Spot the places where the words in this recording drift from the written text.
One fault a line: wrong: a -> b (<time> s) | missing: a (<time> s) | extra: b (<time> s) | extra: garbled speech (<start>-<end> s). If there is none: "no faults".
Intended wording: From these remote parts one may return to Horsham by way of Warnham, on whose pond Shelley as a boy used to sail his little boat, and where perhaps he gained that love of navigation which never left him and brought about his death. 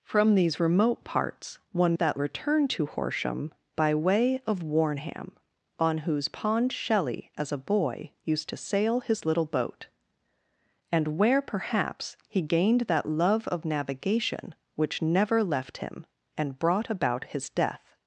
wrong: may -> that (1.9 s)